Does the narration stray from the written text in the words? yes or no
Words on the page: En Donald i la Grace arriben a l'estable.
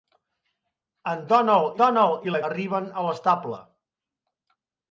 yes